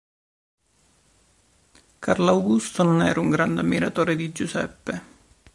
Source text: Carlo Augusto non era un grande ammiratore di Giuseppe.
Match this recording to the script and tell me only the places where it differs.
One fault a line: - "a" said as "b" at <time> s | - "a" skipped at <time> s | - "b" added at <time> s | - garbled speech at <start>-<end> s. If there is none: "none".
none